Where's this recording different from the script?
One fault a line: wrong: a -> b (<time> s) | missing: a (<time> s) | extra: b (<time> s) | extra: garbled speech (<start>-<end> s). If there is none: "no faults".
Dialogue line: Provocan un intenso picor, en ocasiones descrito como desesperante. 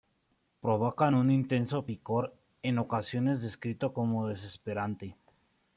no faults